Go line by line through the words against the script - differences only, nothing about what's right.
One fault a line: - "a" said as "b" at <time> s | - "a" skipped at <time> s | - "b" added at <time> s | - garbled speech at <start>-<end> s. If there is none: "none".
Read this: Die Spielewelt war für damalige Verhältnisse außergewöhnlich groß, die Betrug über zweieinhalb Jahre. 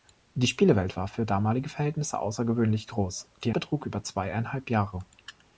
none